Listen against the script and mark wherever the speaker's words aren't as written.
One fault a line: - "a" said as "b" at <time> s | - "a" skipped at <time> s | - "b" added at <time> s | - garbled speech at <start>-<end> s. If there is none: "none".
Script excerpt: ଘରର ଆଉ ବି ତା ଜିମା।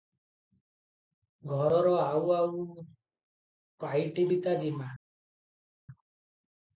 - "ଆଉ ପାଇଟି" added at 2.3 s